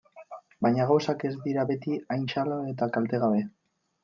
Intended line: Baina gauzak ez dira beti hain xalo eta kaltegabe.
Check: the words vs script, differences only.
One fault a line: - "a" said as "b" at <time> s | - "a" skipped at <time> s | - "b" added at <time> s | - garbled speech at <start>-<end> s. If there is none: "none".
none